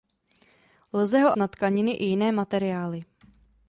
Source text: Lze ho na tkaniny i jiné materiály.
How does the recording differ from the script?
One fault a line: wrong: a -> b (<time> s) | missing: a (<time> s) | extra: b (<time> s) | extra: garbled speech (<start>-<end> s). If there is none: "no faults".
no faults